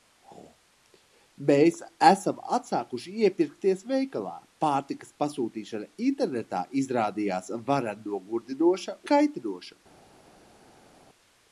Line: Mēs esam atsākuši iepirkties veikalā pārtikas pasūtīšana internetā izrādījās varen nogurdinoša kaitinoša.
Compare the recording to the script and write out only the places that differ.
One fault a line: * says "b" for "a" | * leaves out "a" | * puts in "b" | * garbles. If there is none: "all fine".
all fine